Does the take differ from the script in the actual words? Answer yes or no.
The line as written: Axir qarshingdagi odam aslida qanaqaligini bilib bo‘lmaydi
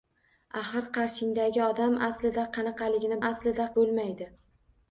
yes